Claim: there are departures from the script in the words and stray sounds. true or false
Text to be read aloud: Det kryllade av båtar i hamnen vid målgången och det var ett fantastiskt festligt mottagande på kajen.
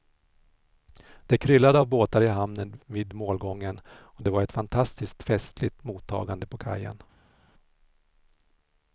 false